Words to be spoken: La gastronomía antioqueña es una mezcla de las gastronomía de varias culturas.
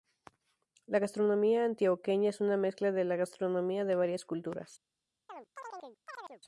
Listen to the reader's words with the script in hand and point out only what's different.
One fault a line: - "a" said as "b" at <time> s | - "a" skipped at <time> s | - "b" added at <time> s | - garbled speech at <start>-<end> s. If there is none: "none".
- "las" said as "la" at 3.0 s